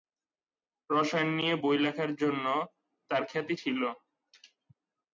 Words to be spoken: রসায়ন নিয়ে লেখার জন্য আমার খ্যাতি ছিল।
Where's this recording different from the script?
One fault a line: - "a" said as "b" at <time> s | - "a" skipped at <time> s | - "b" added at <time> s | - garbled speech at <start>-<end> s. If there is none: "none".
- "বই" added at 1.6 s
- "আমার" said as "তার" at 3.1 s